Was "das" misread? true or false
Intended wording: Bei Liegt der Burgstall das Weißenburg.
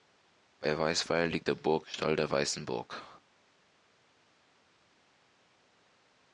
true